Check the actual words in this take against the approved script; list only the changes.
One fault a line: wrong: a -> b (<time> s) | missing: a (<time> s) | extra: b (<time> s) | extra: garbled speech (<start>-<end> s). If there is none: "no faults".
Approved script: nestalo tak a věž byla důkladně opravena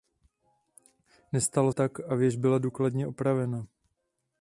no faults